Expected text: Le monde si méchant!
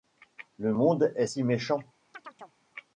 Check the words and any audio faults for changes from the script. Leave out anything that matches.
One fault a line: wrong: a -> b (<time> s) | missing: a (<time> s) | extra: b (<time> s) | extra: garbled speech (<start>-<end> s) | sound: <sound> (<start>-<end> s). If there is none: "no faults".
extra: est (1.2 s)
sound: chirp (2.1-2.6 s)